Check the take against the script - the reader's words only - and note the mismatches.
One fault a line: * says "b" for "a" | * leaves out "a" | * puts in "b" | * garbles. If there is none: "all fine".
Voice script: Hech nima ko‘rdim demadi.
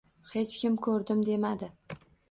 * says "kim" for "nima"